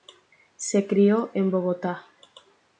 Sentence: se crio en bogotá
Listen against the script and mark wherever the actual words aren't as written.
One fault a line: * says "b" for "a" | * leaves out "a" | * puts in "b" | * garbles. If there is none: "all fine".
all fine